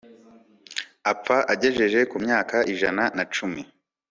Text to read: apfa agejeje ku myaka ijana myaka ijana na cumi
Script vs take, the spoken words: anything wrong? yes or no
yes